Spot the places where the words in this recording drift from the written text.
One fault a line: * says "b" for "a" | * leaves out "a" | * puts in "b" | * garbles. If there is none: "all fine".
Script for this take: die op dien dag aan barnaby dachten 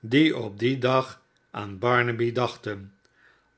all fine